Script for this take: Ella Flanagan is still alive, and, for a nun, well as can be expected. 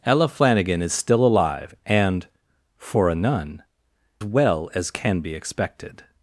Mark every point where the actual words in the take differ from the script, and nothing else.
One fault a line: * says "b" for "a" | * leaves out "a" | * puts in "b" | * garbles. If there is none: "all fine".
all fine